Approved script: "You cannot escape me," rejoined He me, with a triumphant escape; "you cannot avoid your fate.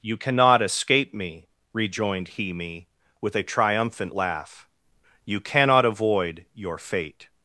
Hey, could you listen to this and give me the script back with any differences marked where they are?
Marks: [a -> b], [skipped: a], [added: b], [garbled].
"You cannot escape me," rejoined He me, with a triumphant [escape; -> laugh] "you cannot avoid your fate.